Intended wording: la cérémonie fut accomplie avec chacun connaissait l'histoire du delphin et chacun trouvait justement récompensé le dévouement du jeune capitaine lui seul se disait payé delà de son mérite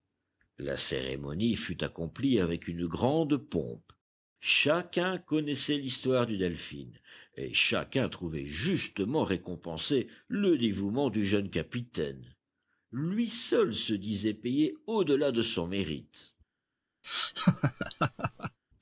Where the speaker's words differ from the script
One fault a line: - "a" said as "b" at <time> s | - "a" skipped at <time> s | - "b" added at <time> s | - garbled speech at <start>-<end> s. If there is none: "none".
- "une grande pompe" added at 2.7 s
- "au" added at 14.9 s